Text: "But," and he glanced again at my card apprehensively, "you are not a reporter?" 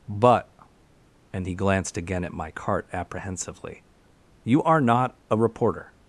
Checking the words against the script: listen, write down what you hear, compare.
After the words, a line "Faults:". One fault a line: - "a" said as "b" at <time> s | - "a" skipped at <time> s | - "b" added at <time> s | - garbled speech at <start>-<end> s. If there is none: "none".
"But," and he glanced again at my cart apprehensively, "you are not a reporter?"
Faults:
- "card" said as "cart" at 2.5 s